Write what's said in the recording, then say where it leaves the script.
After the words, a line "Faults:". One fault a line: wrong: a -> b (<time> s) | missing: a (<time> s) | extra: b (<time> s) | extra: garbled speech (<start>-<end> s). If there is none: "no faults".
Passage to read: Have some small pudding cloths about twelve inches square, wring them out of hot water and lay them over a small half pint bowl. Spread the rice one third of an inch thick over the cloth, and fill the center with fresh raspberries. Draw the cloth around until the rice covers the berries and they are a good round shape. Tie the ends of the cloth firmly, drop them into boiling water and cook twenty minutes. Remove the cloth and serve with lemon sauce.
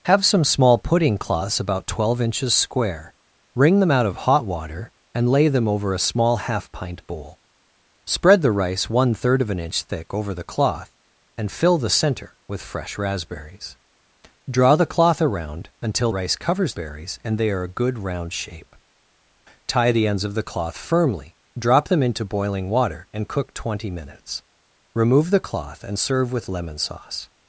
Have some small pudding cloths about twelve inches square, wring them out of hot water and lay them over a small half pint bowl. Spread the rice one third of an inch thick over the cloth, and fill the center with fresh raspberries. Draw the cloth around until rice covers berries and they are a good round shape. Tie the ends of the cloth firmly, drop them into boiling water and cook twenty minutes. Remove the cloth and serve with lemon sauce.
Faults:
missing: the (16.1 s)
missing: the (16.7 s)